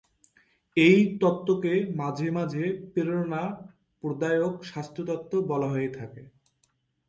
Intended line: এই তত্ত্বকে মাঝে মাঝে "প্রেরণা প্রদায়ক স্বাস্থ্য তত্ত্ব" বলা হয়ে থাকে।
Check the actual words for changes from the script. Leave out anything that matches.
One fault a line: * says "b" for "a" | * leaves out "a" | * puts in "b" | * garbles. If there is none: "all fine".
all fine